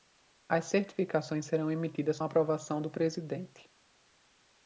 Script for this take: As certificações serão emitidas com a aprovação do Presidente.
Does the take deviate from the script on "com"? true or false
true